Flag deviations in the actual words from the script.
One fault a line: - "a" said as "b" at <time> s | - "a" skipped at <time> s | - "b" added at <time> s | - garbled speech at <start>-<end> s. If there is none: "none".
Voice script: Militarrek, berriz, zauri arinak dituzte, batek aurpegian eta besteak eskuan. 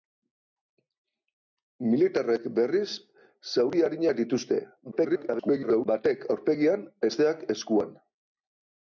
- garbled speech at 4.9-5.9 s
- "eta" skipped at 6.9 s